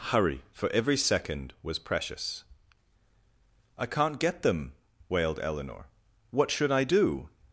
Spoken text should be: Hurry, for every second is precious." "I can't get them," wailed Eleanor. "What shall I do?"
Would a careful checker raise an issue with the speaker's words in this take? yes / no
yes